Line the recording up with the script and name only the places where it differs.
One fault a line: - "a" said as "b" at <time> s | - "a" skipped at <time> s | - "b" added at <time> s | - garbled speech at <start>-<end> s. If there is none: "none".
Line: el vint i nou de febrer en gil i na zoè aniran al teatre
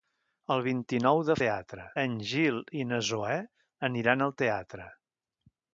- "febrer" said as "teatre" at 1.4 s